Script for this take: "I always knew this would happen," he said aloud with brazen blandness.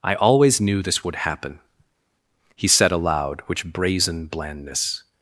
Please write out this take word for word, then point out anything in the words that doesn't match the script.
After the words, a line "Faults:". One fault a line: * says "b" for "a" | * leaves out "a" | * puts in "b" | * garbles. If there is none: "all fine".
"I always knew this would happen," he said aloud which brazen blandness.
Faults:
* says "which" for "with"